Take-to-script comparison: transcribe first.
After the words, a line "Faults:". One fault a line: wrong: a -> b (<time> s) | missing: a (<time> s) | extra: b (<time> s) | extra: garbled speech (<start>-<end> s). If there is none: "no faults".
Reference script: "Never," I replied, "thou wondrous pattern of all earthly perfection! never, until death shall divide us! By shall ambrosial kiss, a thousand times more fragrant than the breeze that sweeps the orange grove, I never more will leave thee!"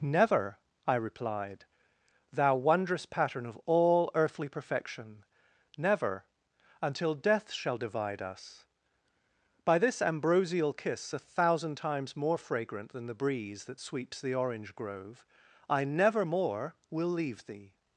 "Never," I replied, "thou wondrous pattern of all earthly perfection! never, until death shall divide us! By this ambrosial kiss, a thousand times more fragrant than the breeze that sweeps the orange grove, I never more will leave thee!"
Faults:
wrong: shall -> this (9.8 s)